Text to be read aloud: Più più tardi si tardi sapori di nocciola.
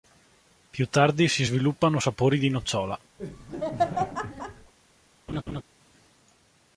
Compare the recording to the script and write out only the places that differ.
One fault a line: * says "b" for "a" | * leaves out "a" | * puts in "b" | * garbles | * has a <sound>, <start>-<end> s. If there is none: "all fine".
* leaves out "più"
* says "sviluppano" for "tardi"
* has a laugh, 3.2-4.7 s
* has a laugh, 5.3-5.6 s